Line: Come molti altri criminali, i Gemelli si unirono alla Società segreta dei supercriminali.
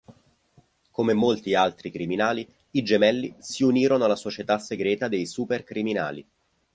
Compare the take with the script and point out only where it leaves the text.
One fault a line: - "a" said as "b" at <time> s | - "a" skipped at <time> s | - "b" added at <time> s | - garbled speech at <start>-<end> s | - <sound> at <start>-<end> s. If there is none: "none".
none